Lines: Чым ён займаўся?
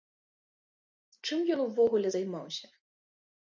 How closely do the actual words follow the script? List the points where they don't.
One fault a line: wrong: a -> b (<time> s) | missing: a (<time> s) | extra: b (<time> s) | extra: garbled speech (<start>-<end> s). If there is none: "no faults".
extra: увогуле (1.7 s)